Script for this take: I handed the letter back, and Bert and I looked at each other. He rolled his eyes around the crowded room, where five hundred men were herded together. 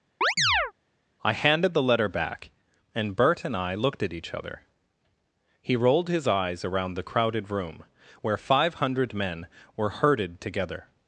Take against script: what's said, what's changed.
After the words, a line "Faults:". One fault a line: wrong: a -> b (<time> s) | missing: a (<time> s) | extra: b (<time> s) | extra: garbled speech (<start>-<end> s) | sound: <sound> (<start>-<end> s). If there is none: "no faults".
I handed the letter back, and Bert and I looked at each other. He rolled his eyes around the crowded room, where five hundred men were herded together.
Faults:
sound: chirp (0.2-0.7 s)